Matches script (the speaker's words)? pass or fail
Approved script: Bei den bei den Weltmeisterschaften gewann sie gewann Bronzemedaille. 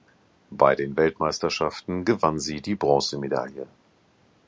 fail